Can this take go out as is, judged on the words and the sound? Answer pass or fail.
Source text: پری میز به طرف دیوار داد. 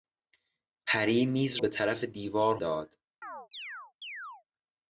fail